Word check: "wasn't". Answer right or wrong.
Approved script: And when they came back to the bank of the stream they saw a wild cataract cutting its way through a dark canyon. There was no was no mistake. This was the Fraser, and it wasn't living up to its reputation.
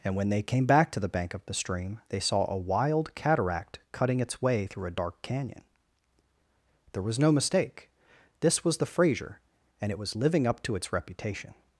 wrong